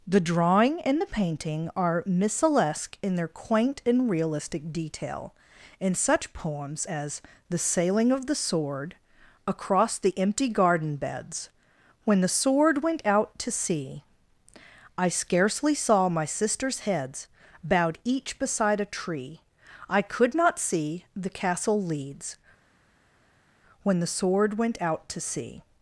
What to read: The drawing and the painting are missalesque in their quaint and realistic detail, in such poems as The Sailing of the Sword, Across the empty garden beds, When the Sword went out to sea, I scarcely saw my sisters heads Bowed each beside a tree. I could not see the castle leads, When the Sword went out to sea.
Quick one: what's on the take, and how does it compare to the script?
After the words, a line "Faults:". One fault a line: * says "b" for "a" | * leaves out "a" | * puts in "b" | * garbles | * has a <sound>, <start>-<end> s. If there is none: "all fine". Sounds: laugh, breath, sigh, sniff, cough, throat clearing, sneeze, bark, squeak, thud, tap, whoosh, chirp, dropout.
The drawing and the painting are missalesque in their quaint and realistic detail, in such poems as The Sailing of the Sword, Across the empty garden beds, When the Sword went out to sea, I scarcely saw my sisters heads Bowed each beside a tree. I could not see the castle leads, When the Sword went out to sea.
Faults:
all fine